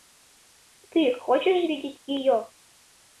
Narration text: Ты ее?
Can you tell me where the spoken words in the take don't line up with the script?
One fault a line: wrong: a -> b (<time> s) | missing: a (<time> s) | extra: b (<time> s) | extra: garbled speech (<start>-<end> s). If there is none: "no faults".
extra: хочешь видеть (1.2 s)